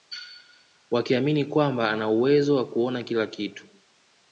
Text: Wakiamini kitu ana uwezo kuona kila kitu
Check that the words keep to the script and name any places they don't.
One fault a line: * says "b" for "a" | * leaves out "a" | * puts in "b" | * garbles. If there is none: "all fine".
* says "kwamba" for "kitu"
* puts in "wa"